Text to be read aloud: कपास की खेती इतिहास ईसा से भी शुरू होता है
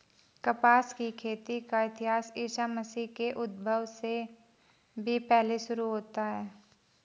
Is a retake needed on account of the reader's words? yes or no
yes